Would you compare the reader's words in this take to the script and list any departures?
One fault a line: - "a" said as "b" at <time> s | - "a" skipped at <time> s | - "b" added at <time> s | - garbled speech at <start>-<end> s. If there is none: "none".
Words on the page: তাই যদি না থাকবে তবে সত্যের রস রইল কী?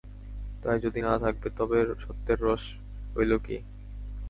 none